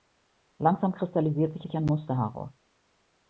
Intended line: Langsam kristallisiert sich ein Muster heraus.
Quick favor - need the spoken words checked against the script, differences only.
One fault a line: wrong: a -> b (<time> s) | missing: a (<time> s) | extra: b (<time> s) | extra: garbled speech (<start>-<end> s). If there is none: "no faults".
extra: sich (1.6 s)